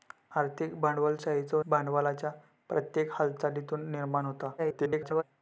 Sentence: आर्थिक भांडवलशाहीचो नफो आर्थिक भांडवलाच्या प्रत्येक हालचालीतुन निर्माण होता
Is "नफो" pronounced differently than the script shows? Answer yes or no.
yes